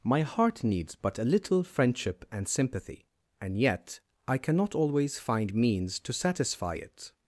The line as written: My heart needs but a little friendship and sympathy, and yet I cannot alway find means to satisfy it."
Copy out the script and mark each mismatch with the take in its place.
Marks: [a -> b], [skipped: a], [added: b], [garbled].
My heart needs but a little friendship and sympathy, and yet I cannot [alway -> always] find means to satisfy it."